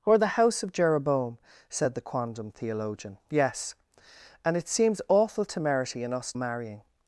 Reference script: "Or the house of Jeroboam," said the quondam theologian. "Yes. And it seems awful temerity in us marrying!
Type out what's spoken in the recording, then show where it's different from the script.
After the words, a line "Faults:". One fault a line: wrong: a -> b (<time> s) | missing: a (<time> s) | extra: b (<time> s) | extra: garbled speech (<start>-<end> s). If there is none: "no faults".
"Or the house of Jeroboam," said the quondam theologian. "Yes. And it seems awful temerity in us marrying!
Faults:
no faults